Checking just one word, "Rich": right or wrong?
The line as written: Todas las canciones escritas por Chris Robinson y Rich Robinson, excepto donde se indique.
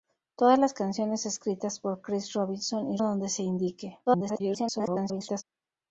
wrong